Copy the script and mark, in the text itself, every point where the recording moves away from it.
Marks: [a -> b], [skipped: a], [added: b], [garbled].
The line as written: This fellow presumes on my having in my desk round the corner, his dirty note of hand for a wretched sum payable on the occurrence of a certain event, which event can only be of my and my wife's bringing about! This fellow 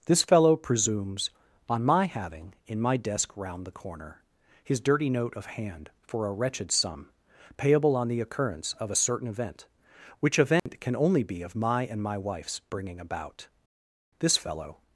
This fellow presumes on my having in my desk round the corner, his dirty note of hand for a wretched sum payable on the occurrence of a certain event, which event can only be of my and my wife's bringing about! This fellow